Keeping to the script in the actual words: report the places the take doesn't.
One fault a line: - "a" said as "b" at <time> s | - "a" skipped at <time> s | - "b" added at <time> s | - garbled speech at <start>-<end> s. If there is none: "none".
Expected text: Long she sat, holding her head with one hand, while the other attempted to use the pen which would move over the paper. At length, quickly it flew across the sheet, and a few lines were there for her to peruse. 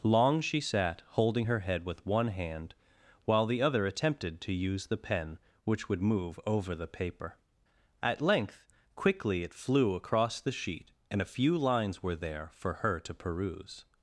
none